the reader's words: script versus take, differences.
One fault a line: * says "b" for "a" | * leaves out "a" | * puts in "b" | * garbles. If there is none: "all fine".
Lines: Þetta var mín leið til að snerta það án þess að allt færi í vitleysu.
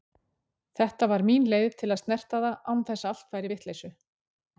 all fine